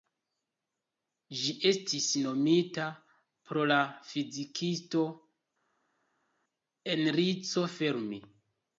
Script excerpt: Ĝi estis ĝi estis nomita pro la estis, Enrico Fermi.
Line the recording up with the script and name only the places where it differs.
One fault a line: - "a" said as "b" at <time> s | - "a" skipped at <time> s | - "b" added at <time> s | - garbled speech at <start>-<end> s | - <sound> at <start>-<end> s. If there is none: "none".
- "ĝi estis" skipped at 2.1 s
- "estis" said as "fizikisto" at 4.1 s